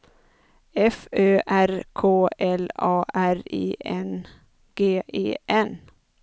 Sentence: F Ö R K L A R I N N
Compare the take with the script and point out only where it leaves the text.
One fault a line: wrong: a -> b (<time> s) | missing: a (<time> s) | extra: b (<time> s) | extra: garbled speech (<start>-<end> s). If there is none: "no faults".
extra: G E (4.8 s)